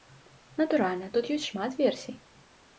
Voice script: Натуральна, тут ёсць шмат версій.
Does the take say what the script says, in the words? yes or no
yes